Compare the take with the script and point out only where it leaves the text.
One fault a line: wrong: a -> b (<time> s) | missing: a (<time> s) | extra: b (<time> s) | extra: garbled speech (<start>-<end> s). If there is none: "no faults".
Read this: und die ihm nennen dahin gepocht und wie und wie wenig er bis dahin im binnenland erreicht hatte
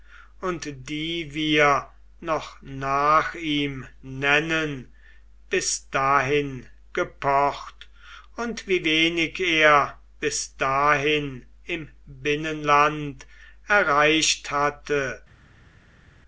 extra: wir noch nach (1.4 s)
extra: bis (5.5 s)
missing: und wie (8.8 s)